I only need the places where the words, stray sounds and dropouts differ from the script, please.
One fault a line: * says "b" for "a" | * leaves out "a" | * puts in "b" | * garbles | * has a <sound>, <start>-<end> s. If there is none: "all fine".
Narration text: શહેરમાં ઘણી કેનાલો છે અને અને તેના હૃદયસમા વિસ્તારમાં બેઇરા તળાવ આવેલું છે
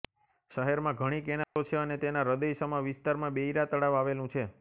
* has a dropout, 1.4-1.6 s
* leaves out "અને"